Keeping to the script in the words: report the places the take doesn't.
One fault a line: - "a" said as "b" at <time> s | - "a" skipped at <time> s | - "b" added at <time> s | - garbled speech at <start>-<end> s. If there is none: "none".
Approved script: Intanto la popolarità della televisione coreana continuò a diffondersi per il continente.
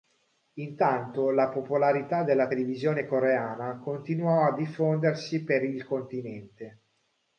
none